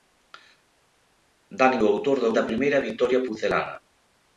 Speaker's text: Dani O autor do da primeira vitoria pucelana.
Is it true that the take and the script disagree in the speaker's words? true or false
false